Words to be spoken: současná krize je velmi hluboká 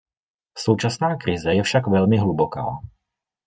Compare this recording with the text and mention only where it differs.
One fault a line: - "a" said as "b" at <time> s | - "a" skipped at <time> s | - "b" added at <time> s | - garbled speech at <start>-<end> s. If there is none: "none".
- "však" added at 1.6 s